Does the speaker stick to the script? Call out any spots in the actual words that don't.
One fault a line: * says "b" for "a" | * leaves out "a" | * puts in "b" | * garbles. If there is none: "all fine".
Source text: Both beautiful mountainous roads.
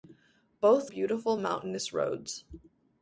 all fine